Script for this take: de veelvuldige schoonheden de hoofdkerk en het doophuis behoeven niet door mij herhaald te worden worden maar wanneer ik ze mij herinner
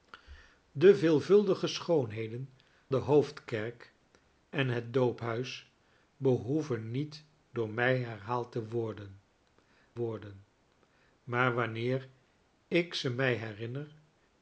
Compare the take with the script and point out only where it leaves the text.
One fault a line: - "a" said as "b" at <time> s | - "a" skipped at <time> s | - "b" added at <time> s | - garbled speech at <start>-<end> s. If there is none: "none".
none